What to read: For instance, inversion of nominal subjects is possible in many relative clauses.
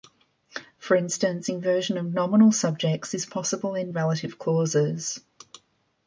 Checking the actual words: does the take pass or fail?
fail